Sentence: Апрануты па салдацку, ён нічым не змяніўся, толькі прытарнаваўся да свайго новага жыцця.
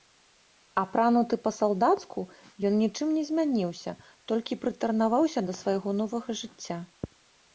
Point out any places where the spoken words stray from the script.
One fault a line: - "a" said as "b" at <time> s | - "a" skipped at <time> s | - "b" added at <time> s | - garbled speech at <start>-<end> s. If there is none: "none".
none